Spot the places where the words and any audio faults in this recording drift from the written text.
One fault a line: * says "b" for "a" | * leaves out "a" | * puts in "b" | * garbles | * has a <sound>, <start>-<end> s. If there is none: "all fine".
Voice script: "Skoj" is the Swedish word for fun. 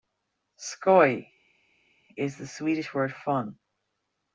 * leaves out "for"